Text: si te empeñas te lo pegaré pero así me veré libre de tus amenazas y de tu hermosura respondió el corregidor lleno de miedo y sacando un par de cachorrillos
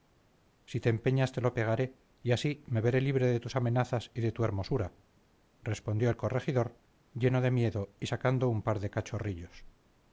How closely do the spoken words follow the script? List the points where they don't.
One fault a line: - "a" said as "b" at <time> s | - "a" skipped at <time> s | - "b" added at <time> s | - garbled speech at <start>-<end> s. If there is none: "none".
- "pero" said as "y" at 2.2 s